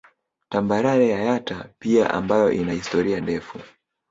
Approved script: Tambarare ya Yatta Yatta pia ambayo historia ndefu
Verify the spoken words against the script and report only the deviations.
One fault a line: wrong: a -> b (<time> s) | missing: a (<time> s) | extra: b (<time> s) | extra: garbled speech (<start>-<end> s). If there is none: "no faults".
missing: Yatta (1.7 s)
extra: ina (2.5 s)